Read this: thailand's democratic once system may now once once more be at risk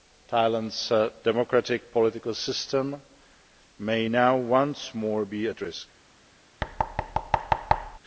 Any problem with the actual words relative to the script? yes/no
yes